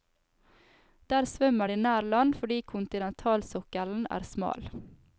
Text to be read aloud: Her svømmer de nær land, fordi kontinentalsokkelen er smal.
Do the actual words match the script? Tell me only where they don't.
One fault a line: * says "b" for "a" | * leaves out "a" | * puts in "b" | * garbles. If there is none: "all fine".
* says "Der" for "Her"